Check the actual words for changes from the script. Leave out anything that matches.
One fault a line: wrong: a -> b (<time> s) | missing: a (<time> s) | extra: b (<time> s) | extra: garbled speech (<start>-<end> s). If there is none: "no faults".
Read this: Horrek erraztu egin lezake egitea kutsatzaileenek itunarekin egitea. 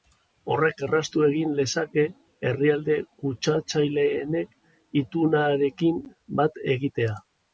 wrong: egitea -> herrialde (2.5 s)
extra: bat (6.4 s)